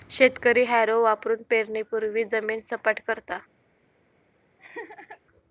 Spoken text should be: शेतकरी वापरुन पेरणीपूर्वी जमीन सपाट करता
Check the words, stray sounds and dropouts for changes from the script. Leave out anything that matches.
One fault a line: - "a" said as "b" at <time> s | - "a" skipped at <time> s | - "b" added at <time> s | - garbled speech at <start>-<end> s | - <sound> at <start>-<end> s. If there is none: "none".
- "हॅरो" added at 0.6 s
- laugh at 4.6-5.2 s